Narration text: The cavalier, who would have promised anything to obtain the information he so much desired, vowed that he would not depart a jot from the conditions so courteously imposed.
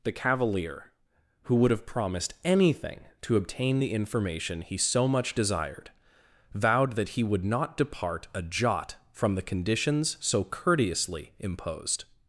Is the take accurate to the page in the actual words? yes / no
yes